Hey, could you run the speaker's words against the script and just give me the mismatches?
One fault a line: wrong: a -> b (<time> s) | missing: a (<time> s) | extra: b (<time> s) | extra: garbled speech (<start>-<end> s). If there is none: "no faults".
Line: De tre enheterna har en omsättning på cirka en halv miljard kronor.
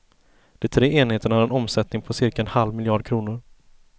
no faults